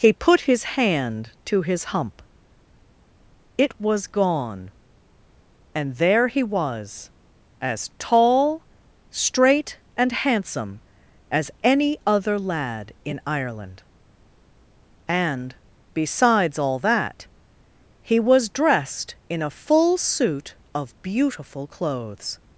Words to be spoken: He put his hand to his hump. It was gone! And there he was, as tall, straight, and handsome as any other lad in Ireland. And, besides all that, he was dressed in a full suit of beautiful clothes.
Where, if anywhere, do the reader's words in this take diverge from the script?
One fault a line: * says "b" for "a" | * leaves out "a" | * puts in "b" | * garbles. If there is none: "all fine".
all fine